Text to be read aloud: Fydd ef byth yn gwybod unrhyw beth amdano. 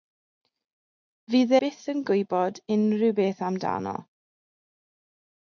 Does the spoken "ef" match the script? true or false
false